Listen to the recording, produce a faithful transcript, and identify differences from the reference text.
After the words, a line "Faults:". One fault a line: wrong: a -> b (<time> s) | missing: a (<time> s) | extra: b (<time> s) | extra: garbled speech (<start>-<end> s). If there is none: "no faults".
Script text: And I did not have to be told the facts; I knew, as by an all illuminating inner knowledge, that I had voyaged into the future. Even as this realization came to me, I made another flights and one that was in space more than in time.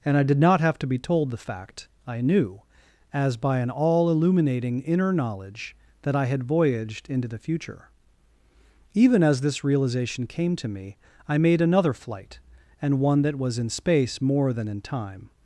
And I did not have to be told the fact; I knew, as by an all illuminating inner knowledge, that I had voyaged into the future. Even as this realization came to me, I made another flight and one that was in space more than in time.
Faults:
wrong: facts -> fact (1.4 s)
wrong: flights -> flight (11.9 s)